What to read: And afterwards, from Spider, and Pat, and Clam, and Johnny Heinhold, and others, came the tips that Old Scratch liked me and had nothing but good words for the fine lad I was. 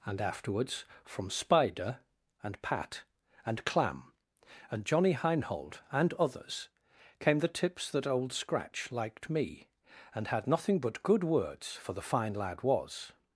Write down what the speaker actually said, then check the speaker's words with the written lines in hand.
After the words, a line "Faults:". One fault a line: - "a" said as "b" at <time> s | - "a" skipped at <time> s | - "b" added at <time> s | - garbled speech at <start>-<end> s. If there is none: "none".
And afterwards, from Spider, and Pat, and Clam, and Johnny Heinhold, and others, came the tips that Old Scratch liked me and had nothing but good words for the fine lad was.
Faults:
- "I" skipped at 12.6 s